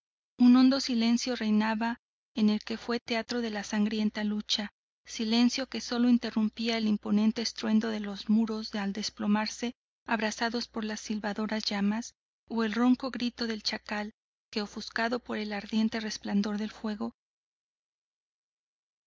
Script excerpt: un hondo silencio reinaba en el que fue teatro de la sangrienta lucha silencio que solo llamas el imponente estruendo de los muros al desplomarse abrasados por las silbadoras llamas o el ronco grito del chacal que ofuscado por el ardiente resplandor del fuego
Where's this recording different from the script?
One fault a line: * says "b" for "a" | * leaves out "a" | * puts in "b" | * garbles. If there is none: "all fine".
* says "interrumpía" for "llamas"